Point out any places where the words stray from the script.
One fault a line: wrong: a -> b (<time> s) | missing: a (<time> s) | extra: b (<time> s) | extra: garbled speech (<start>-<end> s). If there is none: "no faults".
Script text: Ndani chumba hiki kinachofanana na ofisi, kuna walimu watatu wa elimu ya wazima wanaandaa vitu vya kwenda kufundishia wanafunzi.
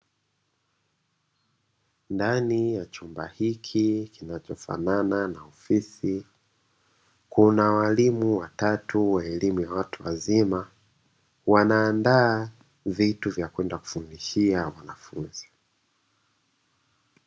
extra: ya (2.8 s)
extra: watu (9.7 s)